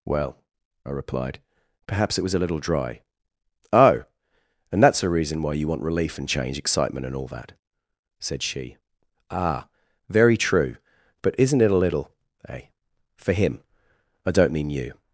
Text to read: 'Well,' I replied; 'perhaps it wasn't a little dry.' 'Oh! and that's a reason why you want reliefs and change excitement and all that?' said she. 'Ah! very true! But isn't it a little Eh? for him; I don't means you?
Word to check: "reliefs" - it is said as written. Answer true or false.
false